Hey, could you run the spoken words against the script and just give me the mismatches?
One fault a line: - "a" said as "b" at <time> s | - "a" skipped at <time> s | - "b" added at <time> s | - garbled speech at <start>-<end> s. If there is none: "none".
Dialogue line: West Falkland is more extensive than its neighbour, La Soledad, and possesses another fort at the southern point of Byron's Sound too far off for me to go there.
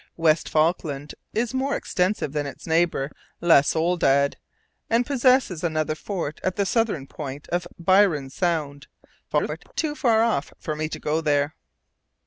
- garbled speech at 9.3-9.7 s